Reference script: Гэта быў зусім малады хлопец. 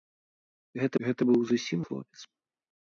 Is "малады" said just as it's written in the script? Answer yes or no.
no